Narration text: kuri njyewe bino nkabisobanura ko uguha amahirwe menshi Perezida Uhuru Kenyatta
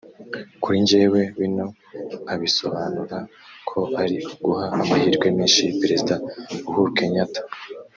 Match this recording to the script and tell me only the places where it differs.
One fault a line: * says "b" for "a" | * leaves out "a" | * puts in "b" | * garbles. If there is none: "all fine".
* puts in "ari"